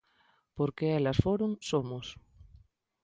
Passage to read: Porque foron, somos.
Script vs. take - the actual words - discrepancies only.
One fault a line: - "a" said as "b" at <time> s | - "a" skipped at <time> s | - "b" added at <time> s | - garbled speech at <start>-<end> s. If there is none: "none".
- "elas" added at 1.0 s